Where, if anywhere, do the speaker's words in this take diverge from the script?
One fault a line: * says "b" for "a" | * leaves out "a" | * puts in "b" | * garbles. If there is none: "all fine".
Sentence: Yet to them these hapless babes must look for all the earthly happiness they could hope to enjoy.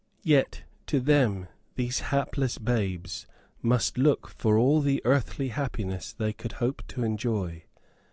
all fine